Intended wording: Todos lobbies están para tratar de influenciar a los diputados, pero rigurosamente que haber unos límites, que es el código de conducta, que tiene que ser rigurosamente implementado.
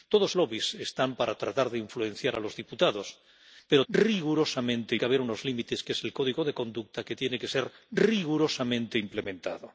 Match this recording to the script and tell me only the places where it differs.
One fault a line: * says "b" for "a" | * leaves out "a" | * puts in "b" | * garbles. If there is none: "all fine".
all fine